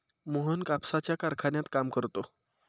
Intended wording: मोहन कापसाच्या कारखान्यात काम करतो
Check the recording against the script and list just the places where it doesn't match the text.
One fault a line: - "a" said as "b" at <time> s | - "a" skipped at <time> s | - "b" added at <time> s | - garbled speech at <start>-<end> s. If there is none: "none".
none